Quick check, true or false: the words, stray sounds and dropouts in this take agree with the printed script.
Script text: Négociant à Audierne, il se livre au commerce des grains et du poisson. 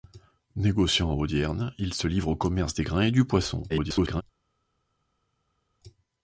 false